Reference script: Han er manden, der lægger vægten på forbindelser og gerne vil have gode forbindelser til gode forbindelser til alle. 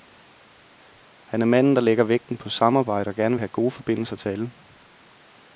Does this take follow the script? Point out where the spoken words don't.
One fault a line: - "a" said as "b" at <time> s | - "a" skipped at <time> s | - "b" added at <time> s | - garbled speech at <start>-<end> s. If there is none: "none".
- "forbindelser" said as "samarbejde" at 2.5 s
- "gode forbindelser til" skipped at 4.3 s